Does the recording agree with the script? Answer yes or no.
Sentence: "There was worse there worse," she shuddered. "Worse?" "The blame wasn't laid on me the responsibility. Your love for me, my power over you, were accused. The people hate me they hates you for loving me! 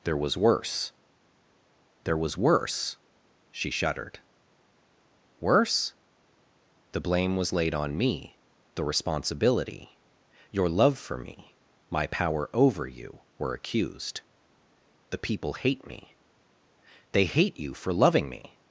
no